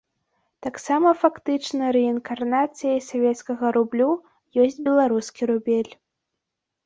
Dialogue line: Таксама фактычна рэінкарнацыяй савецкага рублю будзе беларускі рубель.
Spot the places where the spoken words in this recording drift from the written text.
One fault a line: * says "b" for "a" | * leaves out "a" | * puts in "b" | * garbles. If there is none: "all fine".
* says "ёсць" for "будзе"